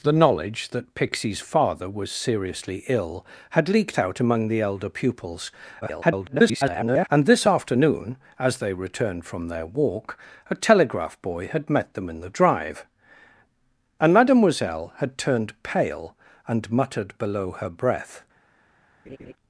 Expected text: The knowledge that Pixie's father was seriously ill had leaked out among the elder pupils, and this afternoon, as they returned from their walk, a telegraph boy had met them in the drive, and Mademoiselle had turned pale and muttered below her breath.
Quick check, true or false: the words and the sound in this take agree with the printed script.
false